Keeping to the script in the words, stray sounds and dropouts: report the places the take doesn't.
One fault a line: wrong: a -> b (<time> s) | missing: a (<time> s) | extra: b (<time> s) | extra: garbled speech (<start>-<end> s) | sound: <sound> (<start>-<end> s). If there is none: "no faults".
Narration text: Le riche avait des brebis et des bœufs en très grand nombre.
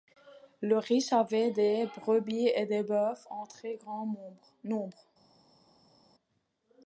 no faults